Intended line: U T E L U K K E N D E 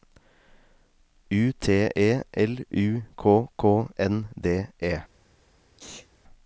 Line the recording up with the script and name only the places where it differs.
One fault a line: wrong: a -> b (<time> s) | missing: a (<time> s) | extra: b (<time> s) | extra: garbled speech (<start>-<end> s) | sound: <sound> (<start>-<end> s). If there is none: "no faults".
missing: E (3.9 s)
sound: sneeze (5.8-6.1 s)